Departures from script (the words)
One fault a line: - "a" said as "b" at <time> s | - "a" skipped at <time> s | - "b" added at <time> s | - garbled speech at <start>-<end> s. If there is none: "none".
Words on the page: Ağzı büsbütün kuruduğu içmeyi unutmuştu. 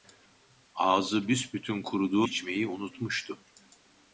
none